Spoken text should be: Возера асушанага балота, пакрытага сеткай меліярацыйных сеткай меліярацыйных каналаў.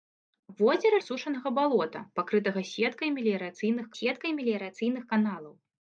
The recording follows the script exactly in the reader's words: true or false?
true